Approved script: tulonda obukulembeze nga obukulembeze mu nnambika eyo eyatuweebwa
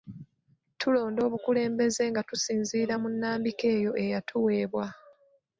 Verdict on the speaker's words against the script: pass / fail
fail